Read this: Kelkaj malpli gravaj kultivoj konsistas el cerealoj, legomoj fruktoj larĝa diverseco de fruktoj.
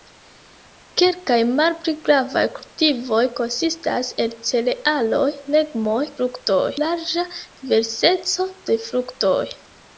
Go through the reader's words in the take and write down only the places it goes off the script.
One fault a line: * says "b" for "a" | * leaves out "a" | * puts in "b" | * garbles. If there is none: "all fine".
all fine